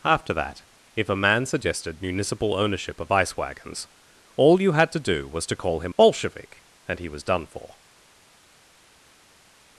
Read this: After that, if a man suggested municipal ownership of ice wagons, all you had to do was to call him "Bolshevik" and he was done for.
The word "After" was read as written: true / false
true